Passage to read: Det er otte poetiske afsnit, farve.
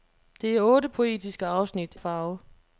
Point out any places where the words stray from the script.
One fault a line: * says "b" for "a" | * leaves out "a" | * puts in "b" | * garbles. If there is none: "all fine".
all fine